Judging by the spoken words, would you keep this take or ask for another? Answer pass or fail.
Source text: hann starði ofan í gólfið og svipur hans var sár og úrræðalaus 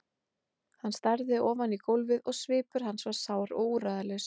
pass